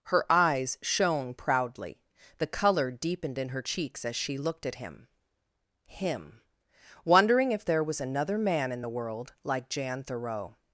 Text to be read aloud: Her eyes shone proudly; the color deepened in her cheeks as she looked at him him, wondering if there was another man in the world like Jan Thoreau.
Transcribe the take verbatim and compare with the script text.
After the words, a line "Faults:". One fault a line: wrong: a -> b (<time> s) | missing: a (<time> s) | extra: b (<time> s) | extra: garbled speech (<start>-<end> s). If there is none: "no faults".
Her eyes shone proudly; the color deepened in her cheeks as she looked at him him, wondering if there was another man in the world like Jan Thoreau.
Faults:
no faults